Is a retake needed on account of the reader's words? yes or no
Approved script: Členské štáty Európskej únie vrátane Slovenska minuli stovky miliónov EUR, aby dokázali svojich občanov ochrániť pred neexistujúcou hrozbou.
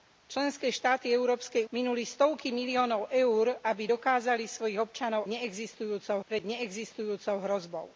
yes